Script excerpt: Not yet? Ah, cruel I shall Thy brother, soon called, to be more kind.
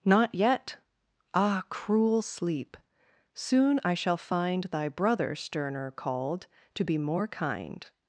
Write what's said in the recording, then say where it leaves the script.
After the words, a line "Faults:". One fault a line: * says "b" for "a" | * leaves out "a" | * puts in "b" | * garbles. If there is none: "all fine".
Not yet? Ah, cruel Sleep! soon I shall find Thy brother, sterner called, to be more kind.
Faults:
* puts in "Sleep soon"
* puts in "find"
* says "sterner" for "soon"